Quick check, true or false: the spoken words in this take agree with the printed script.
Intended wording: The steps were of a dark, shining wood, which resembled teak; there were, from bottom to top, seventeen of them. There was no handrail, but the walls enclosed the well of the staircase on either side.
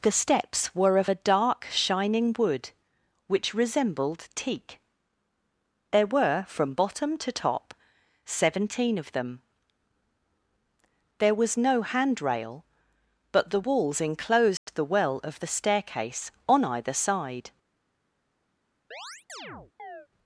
true